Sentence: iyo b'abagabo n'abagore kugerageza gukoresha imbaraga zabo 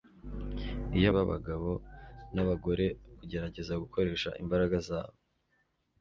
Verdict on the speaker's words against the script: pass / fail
pass